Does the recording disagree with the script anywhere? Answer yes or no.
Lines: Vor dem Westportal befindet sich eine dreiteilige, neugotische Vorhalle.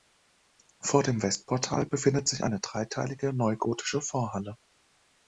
no